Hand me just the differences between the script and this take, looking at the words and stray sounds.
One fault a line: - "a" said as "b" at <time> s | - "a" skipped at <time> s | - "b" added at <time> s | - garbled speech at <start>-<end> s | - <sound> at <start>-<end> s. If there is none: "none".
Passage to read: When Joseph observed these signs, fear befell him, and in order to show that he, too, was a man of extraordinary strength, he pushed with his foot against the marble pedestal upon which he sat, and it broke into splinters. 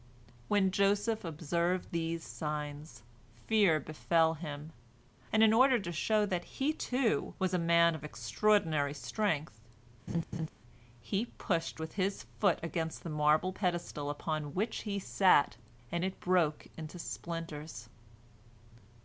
- laugh at 10.1-10.5 s